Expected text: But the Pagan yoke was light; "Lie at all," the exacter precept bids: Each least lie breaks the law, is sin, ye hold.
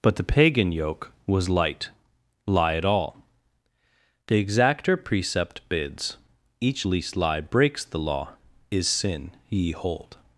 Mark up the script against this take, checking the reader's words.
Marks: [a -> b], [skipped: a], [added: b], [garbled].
But the Pagan yoke was light; "Lie at all," the exacter precept bids: Each least lie breaks the law, is sin, ye hold.